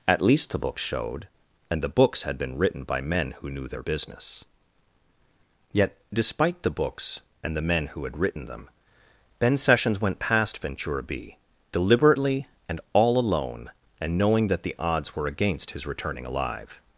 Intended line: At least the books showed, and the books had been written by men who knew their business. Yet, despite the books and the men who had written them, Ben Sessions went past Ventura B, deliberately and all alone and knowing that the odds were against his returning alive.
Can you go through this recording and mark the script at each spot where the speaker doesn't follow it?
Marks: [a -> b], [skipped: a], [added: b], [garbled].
At least the books showed, and the books had been written by men who knew their business. Yet, despite the books and the men who had written them, Ben Sessions went past Ventura B, deliberately and all alone and knowing that the odds were against his returning alive.